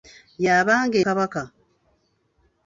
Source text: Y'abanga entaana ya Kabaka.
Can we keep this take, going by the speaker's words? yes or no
no